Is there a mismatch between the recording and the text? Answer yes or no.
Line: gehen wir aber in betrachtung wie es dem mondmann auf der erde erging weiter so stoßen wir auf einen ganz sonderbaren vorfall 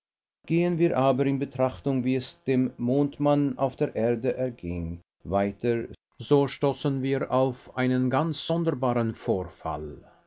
no